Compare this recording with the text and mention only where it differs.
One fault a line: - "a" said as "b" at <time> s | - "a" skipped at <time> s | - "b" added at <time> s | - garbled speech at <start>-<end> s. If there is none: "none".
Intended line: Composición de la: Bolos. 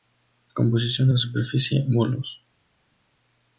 - "superficie" added at 1.2 s